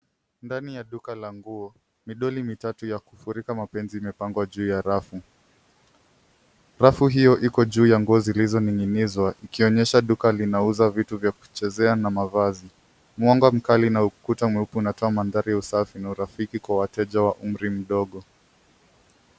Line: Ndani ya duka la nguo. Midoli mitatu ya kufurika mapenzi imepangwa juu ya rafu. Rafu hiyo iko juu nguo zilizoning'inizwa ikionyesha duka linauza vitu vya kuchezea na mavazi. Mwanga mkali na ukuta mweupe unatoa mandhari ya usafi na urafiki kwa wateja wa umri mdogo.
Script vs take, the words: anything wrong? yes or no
yes